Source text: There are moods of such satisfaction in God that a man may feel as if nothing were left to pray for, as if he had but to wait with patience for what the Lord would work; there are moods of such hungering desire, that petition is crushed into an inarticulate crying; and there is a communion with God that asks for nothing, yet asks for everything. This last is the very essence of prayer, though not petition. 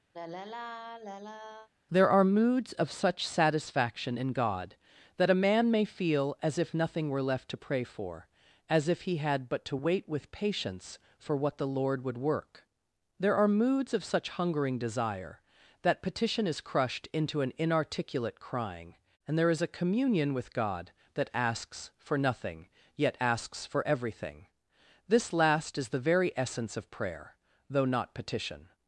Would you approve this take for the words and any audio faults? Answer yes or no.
no